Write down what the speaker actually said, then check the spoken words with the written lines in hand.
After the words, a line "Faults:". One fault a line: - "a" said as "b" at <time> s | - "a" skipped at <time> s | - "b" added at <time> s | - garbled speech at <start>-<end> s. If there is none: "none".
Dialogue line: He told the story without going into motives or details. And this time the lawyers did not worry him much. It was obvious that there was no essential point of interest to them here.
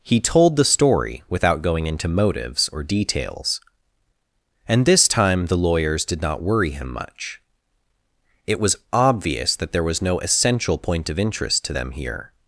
He told the story without going into motives or details. And this time the lawyers did not worry him much. It was obvious that there was no essential point of interest to them here.
Faults:
none